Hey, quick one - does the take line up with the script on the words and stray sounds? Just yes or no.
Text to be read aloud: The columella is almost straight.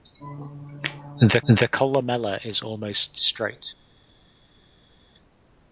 no